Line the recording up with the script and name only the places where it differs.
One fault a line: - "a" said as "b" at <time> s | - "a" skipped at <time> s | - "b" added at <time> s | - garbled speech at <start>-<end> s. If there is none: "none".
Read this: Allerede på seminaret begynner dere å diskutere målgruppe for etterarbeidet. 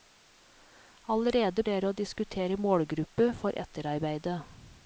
- "på seminaret begynner" skipped at 1.6 s